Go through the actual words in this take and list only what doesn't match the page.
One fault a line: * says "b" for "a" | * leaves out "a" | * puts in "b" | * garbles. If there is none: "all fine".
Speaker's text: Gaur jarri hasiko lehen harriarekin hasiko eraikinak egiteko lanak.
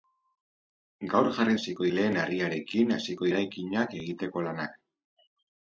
all fine